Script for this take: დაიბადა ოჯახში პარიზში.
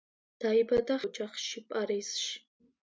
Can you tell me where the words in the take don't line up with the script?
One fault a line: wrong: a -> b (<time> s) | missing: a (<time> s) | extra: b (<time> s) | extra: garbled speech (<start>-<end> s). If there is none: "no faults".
no faults